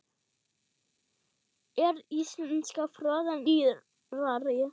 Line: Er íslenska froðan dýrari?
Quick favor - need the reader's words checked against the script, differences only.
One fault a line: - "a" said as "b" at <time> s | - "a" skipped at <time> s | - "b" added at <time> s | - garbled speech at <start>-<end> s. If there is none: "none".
none